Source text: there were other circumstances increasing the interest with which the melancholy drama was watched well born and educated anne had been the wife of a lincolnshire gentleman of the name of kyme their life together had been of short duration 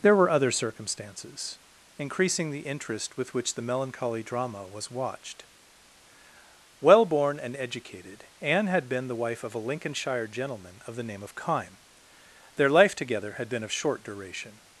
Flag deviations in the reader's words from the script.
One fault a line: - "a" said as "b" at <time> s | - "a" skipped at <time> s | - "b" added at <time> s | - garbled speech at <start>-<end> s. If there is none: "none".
none